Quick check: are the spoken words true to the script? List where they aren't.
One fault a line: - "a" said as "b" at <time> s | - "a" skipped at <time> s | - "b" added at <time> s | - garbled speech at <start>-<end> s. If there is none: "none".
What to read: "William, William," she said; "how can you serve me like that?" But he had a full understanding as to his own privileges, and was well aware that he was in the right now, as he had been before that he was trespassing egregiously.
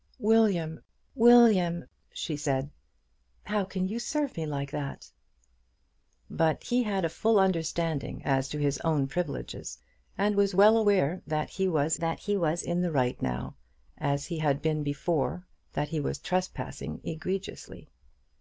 - "that he was" added at 12.0 s